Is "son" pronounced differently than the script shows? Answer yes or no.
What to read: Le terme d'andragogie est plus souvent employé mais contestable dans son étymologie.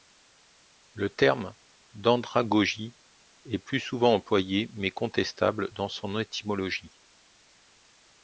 no